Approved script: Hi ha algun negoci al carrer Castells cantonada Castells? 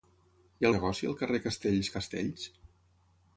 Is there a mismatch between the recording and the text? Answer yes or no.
yes